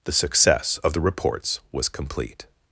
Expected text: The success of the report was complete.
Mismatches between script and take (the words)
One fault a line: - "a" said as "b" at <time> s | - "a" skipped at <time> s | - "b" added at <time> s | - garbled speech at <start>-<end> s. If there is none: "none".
- "report" said as "reports" at 1.0 s